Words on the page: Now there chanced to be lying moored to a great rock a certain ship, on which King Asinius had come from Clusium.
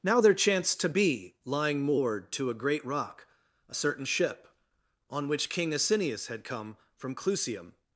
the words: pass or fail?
pass